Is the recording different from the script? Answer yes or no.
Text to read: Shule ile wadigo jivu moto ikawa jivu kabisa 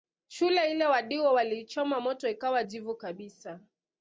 yes